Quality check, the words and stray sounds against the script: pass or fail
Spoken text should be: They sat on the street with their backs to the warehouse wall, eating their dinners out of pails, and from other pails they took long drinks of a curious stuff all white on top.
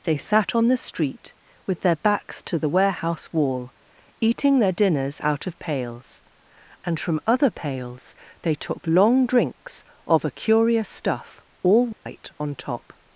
fail